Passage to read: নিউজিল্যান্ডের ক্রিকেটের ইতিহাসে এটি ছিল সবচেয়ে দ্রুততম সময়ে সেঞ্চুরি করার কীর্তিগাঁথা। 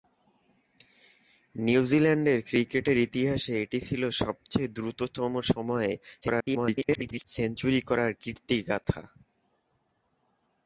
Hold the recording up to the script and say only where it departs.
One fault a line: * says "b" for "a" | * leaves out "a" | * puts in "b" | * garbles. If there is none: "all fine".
* garbles